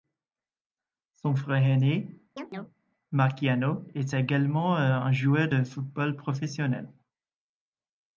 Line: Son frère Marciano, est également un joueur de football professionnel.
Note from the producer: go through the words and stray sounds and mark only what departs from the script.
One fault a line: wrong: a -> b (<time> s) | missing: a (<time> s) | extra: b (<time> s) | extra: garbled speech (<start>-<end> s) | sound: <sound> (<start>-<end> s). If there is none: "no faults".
extra: aîné (1.6 s)
sound: chirp (2.4-2.8 s)